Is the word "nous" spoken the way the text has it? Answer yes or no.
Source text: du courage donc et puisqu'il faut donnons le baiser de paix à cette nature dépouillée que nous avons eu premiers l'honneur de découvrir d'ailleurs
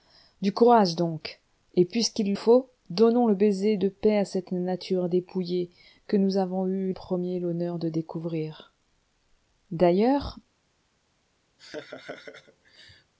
yes